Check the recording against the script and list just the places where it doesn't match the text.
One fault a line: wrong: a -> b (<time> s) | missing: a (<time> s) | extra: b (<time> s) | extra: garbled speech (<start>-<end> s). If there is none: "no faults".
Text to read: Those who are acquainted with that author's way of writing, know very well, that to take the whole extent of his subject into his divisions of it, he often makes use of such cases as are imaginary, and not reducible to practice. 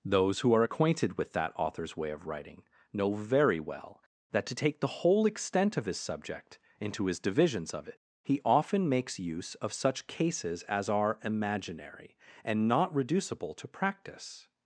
no faults